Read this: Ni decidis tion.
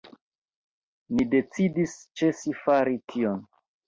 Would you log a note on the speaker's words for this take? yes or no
yes